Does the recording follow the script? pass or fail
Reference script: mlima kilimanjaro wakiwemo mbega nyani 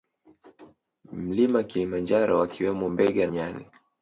pass